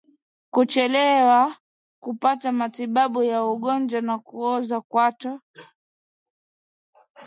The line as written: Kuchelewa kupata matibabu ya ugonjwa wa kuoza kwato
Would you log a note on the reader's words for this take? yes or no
no